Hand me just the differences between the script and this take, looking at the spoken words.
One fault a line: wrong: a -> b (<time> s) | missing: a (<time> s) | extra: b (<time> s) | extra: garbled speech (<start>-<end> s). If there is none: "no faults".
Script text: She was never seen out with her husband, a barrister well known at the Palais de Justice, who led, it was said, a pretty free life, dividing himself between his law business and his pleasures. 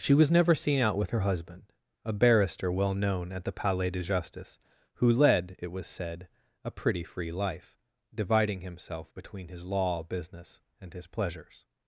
no faults